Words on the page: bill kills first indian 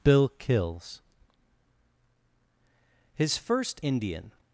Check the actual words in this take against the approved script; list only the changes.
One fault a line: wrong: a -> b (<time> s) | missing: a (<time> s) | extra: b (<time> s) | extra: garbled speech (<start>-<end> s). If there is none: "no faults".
extra: his (3.2 s)